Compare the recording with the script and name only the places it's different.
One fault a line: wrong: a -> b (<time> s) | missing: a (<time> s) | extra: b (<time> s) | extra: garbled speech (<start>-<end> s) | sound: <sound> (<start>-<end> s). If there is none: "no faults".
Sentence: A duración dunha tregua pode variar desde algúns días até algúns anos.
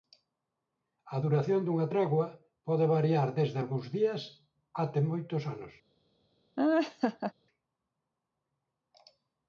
wrong: algúns -> moitos (5.1 s)
sound: laugh (6.6-7.3 s)